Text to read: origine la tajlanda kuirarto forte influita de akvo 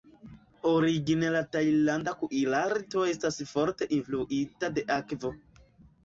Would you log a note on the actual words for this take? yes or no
yes